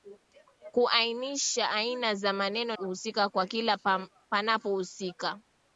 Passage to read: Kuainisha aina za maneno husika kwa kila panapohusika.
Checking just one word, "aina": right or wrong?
right